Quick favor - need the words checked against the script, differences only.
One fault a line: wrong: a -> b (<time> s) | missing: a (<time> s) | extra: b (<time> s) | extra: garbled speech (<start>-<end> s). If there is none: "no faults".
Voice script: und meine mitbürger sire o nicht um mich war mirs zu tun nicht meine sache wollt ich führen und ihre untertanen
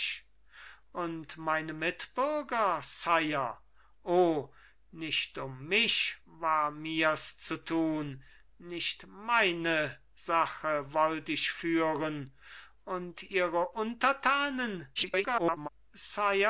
extra: garbled speech (15.0-15.7 s)